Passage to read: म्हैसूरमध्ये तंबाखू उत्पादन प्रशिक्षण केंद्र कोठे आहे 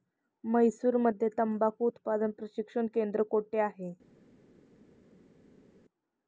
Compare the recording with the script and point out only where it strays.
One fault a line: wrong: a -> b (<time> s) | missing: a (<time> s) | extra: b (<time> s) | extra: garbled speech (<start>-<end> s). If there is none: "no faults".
no faults